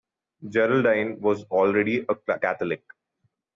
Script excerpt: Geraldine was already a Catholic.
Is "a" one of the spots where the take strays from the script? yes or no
no